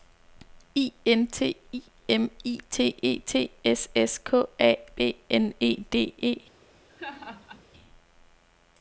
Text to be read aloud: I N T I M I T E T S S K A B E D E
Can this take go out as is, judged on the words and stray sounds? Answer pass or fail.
fail